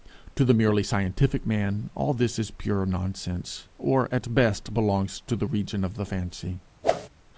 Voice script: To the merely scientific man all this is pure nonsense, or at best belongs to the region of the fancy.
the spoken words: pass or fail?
pass